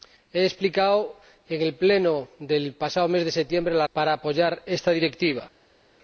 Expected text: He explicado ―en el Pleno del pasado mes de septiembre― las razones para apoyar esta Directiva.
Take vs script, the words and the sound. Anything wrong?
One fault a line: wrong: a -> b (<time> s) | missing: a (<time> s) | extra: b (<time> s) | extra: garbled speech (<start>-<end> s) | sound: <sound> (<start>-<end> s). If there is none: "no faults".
missing: razones (3.9 s)